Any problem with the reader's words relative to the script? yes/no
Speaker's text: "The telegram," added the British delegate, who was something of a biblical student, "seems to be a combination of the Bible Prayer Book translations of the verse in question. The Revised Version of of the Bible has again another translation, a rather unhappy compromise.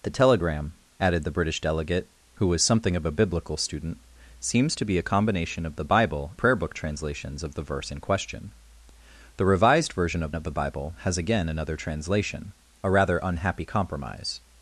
no